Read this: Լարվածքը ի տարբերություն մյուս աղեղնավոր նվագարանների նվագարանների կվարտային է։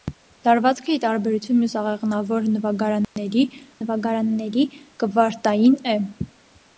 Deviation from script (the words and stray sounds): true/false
true